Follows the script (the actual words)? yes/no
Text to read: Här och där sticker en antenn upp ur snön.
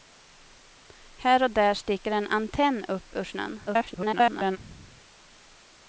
no